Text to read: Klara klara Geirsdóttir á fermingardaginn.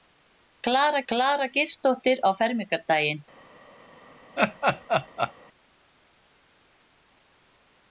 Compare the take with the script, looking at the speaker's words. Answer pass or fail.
pass